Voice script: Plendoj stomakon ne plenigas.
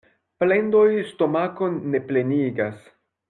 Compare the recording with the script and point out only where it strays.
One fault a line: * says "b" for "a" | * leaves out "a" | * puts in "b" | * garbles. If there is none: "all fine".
all fine